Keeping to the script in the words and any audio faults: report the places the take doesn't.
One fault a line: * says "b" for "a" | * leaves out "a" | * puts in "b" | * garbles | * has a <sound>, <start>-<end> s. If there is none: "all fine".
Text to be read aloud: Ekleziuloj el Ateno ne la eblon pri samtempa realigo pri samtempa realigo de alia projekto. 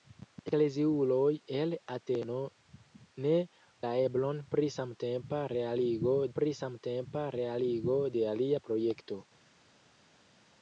all fine